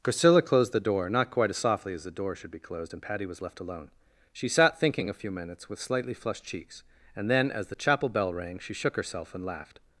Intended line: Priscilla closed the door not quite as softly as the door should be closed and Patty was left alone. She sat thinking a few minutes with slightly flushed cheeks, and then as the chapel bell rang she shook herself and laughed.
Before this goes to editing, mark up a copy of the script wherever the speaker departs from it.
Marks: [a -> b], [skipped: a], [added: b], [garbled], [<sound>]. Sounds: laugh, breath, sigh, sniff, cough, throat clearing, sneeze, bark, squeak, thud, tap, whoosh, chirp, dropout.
Priscilla closed the door not quite as softly as the door should be closed and Patty was left alone. She sat thinking a few minutes with slightly flushed cheeks, and then as the chapel bell rang she shook herself and laughed.